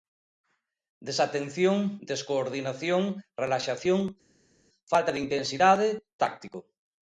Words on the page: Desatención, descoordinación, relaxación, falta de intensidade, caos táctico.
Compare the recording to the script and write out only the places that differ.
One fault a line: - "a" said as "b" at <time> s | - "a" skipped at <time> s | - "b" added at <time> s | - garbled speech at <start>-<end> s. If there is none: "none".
- "caos" skipped at 5.9 s